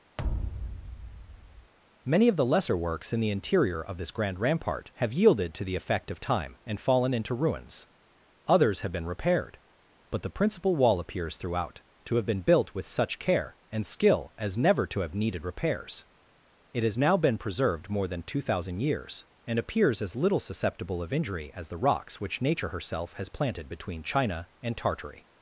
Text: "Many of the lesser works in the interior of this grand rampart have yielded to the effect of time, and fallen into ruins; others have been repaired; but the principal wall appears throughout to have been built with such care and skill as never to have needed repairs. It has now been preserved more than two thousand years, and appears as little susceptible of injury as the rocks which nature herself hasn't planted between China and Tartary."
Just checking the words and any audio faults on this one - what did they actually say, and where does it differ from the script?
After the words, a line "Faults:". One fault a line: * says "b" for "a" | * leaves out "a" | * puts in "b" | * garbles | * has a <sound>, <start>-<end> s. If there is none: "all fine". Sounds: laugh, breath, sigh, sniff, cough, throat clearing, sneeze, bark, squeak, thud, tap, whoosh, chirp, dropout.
"Many of the lesser works in the interior of this grand rampart have yielded to the effect of time, and fallen into ruins; others have been repaired; but the principal wall appears throughout to have been built with such care and skill as never to have needed repairs. It has now been preserved more than two thousand years, and appears as little susceptible of injury as the rocks which nature herself has planted between China and Tartary."
Faults:
* has a thud, 0.2-1.7 s
* says "has" for "hasn't"